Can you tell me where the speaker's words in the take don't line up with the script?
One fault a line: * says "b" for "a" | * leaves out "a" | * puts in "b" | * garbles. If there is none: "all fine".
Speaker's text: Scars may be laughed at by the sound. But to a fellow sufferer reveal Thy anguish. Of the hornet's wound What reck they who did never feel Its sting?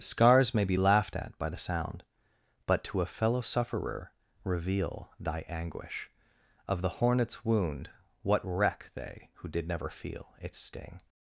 all fine